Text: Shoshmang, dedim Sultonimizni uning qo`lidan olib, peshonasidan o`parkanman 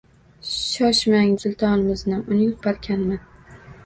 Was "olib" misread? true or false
true